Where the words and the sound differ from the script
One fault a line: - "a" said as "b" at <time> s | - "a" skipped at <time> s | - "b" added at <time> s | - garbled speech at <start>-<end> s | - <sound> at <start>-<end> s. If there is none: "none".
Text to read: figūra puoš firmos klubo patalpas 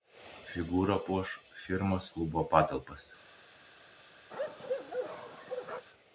- bark at 4.3-5.9 s